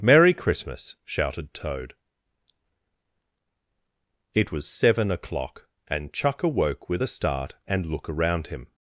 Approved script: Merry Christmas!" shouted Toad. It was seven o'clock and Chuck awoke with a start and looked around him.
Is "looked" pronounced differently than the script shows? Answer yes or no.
yes